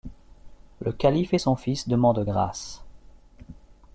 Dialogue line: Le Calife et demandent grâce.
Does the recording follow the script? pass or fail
fail